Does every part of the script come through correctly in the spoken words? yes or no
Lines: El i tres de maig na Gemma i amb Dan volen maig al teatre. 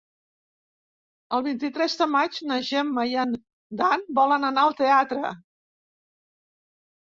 no